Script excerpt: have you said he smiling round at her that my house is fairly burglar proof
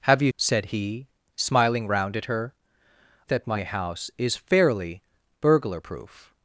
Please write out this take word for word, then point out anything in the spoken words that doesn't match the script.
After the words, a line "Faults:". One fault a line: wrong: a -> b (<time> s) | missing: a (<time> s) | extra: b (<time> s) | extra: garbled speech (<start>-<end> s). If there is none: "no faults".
have you said he smiling round at her that my house is fairly burglar proof
Faults:
no faults